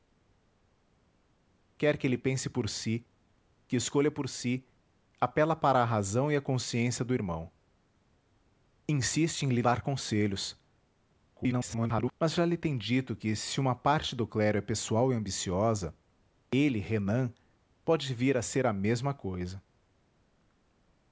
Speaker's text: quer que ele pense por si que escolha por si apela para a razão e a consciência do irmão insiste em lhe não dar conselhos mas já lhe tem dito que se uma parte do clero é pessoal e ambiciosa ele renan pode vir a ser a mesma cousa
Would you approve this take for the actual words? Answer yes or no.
no